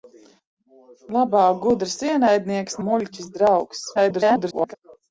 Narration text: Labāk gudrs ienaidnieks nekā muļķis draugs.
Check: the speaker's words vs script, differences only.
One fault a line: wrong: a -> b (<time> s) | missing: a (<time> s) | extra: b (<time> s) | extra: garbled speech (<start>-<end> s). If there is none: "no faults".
missing: nekā (2.8 s)
extra: garbled speech (4.0-4.7 s)